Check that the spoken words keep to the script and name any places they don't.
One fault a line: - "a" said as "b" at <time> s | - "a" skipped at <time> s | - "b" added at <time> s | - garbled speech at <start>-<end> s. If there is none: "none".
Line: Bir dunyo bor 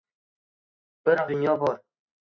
none